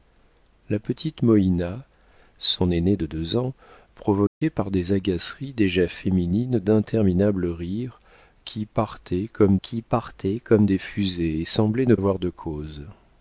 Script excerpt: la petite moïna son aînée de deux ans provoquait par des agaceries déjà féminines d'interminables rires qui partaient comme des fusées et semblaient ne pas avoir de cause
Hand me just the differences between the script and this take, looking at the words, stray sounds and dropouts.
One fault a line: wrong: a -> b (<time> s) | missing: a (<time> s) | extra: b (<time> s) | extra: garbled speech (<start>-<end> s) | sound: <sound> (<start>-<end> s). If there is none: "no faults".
sound: dropout (4.3-4.4 s)
extra: qui partaient comme (9.6 s)
missing: pas (12.0 s)